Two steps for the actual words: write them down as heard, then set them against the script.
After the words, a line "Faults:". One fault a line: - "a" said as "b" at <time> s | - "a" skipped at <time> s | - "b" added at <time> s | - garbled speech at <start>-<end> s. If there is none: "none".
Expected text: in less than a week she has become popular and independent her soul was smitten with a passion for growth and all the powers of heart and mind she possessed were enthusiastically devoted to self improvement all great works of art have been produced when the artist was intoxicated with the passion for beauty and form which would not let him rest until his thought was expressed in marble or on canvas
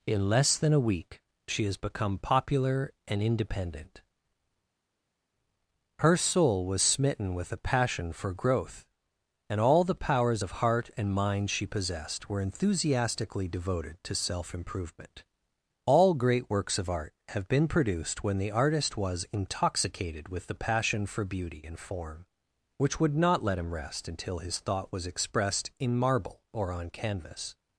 in less than a week she has become popular and independent her soul was smitten with a passion for growth and all the powers of heart and mind she possessed were enthusiastically devoted to self improvement all great works of art have been produced when the artist was intoxicated with the passion for beauty and form which would not let him rest until his thought was expressed in marble or on canvas
Faults:
none